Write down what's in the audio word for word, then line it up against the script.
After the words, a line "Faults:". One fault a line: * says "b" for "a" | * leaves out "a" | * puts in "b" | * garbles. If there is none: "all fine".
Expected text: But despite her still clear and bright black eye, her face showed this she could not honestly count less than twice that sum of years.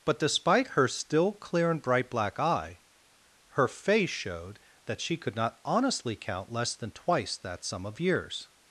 But despite her still clear and bright black eye, her face showed that she could not honestly count less than twice that sum of years.
Faults:
* says "that" for "this"